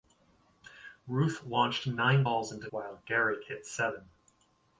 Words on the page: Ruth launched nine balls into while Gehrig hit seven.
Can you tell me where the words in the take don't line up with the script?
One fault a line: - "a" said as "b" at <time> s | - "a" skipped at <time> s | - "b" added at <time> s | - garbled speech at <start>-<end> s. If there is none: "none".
none